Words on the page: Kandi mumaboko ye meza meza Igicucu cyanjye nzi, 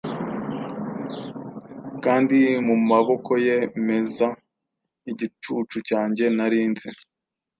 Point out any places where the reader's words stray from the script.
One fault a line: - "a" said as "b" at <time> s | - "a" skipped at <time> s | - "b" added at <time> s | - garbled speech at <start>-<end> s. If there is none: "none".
- "meza" skipped at 4.3 s
- "nari" added at 6.4 s